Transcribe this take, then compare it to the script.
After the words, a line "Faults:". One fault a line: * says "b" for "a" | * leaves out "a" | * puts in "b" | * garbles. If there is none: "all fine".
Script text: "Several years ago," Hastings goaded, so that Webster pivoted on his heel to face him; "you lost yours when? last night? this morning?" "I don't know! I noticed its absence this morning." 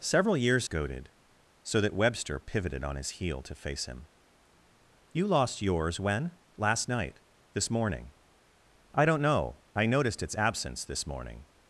"Several years goaded, so that Webster pivoted on his heel to face him; "you lost yours when? last night? this morning?" "I don't know! I noticed its absence this morning."
Faults:
* leaves out "ago Hastings"